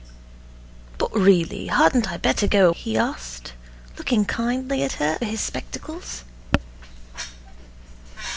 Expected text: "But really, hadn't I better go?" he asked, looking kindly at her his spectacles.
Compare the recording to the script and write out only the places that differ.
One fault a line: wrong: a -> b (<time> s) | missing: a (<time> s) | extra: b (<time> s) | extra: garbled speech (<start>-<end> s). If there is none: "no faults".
no faults